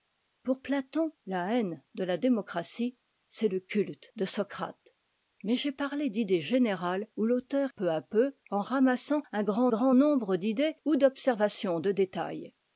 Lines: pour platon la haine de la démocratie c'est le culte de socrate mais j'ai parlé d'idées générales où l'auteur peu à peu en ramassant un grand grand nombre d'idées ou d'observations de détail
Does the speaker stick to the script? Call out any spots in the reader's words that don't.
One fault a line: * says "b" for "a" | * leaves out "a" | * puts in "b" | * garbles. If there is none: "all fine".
all fine